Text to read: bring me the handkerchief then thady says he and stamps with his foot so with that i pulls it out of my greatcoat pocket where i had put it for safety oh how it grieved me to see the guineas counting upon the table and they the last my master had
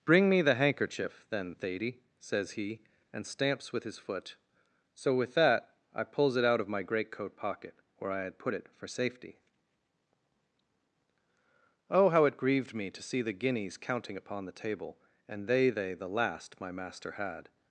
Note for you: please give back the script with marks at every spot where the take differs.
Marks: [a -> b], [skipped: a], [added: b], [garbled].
bring me the handkerchief then thady says he and stamps with his foot so with that i pulls it out of my greatcoat pocket where i had put it for safety oh how it grieved me to see the guineas counting upon the table and they [added: they] the last my master had